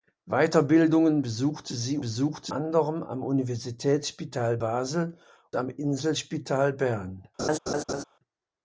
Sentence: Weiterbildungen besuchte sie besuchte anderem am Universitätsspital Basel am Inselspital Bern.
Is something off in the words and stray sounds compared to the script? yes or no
yes